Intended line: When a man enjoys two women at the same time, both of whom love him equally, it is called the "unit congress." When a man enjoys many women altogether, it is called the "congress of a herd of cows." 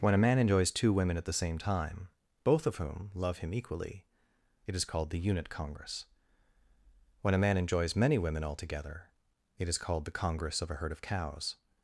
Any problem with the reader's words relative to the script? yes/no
no